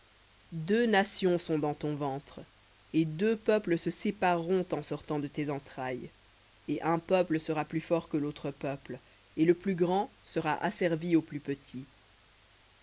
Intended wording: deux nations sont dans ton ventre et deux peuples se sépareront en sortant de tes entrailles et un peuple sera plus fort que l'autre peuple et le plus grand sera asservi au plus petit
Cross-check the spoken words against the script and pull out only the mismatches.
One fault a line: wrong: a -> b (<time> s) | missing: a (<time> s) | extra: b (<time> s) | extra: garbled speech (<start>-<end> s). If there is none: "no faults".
no faults